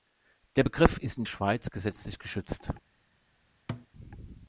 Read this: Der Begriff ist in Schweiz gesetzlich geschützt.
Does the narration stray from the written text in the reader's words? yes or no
no